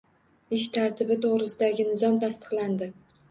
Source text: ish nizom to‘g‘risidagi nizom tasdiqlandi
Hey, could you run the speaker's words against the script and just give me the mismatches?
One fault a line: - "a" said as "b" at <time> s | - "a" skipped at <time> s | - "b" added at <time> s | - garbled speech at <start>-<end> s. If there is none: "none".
- "nizom" said as "tartibi" at 0.8 s